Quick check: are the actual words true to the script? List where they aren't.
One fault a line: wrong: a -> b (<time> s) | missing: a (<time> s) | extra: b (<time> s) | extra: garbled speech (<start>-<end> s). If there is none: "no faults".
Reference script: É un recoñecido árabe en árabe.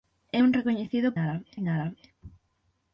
no faults